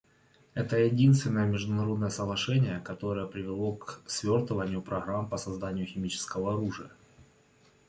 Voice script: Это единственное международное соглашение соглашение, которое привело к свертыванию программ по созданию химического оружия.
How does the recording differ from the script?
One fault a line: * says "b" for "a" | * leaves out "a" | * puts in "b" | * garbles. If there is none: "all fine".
* leaves out "соглашение"